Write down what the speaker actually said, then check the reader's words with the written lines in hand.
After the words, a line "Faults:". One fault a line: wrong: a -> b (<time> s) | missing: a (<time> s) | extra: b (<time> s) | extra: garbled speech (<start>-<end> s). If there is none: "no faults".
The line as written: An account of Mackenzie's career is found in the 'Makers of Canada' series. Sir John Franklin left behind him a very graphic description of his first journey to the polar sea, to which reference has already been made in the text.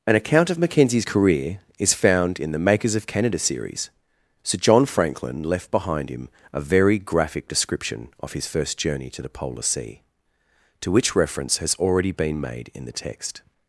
An account of Mackenzie's career is found in the 'Makers of Canada' series. Sir John Franklin left behind him a very graphic description of his first journey to the polar sea, to which reference has already been made in the text.
Faults:
no faults